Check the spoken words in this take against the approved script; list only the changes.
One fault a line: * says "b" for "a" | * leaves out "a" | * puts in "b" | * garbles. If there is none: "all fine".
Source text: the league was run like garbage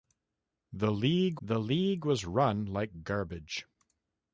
* puts in "the league"